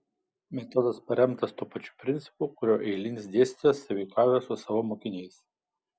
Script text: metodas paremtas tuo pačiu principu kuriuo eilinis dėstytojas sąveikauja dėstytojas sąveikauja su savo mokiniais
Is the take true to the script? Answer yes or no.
no